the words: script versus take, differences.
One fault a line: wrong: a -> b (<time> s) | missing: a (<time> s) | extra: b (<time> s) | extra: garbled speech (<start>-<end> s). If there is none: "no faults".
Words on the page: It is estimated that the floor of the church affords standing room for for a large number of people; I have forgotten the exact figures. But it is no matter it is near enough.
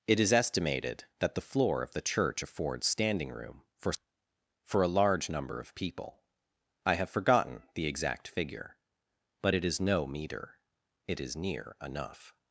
wrong: figures -> figure (8.3 s)
wrong: matter -> meter (10.1 s)